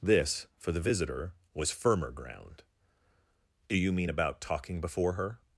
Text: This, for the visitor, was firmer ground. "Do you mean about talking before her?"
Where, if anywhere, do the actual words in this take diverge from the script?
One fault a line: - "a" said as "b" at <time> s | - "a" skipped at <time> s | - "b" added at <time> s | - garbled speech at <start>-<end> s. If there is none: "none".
none